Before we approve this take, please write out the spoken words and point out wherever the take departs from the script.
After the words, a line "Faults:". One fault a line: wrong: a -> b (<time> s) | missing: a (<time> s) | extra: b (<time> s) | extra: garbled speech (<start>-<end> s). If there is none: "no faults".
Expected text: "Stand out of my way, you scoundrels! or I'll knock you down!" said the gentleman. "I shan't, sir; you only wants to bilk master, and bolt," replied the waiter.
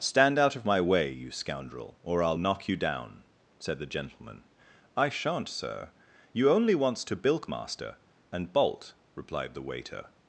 "Stand out of my way, you scoundrel! or I'll knock you down!" said the gentleman. "I shan't, sir; you only wants to bilk master, and bolt," replied the waiter.
Faults:
wrong: scoundrels -> scoundrel (1.3 s)